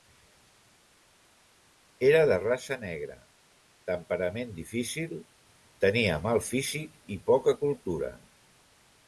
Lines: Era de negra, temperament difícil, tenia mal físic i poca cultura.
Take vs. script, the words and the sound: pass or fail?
fail